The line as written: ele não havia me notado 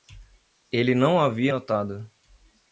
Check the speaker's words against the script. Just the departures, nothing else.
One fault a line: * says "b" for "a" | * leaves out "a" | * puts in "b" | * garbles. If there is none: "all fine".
* leaves out "me"